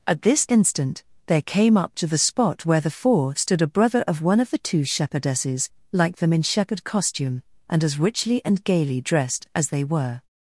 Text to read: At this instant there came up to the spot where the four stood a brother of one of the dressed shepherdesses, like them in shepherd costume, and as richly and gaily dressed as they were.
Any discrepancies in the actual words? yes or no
yes